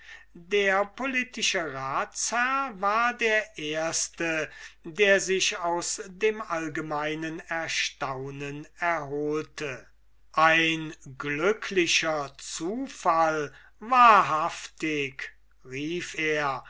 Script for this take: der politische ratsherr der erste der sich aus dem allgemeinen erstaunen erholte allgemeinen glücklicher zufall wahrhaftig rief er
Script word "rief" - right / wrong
right